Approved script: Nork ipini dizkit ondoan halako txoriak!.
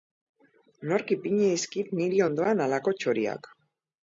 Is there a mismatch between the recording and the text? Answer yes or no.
yes